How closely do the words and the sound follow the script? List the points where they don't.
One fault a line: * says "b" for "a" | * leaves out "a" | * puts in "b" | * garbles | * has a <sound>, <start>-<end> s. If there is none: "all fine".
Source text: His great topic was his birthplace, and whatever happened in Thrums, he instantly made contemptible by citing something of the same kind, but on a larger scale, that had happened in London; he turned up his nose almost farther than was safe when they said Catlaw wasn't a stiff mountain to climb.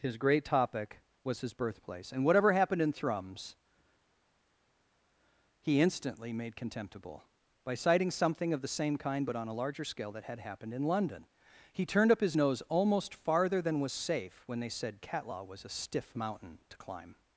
* says "was" for "wasn't"